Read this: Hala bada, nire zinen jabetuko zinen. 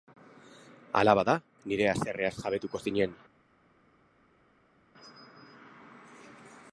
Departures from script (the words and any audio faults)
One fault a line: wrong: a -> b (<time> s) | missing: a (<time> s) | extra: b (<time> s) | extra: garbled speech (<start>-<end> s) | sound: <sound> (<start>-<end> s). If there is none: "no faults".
wrong: zinen -> haserreaz (1.9 s)